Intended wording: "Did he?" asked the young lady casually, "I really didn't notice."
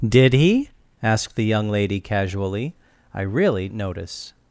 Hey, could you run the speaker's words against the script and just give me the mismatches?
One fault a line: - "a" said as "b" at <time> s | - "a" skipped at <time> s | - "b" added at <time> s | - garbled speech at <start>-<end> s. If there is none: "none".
- "didn't" skipped at 3.7 s